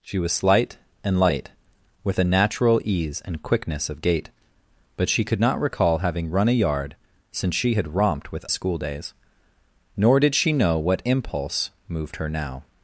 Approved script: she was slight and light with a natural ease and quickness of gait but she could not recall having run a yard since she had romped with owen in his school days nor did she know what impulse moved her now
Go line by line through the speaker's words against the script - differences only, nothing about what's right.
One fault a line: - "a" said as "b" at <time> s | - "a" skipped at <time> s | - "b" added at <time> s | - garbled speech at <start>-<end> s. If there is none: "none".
- "owen in his" skipped at 8.4 s